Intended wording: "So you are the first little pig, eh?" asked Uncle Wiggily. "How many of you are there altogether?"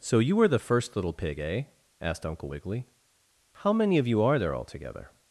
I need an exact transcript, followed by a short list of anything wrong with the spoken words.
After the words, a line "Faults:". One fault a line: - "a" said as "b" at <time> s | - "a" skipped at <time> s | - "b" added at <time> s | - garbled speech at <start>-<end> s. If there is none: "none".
"So you were the first little pig, eh?" asked Uncle Wiggily. "How many of you are there altogether?"
Faults:
- "are" said as "were" at 0.3 s